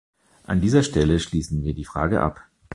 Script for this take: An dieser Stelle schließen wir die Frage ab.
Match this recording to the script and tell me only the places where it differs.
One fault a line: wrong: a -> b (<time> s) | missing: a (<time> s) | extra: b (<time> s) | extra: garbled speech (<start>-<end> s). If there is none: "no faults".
no faults